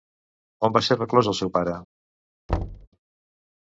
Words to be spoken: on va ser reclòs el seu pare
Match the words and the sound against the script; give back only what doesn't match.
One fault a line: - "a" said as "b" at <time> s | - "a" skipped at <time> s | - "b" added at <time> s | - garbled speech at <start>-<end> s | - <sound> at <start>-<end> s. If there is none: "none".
- thud at 2.5-2.9 s